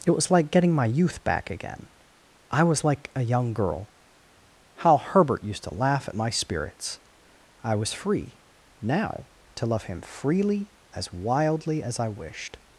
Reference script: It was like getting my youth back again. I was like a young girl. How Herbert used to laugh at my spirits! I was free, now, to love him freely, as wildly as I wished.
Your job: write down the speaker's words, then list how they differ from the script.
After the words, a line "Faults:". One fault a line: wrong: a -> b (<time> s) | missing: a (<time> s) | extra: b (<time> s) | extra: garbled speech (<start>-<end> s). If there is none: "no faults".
It was like getting my youth back again. I was like a young girl. How Herbert used to laugh at my spirits! I was free, now, to love him freely, as wildly as I wished.
Faults:
no faults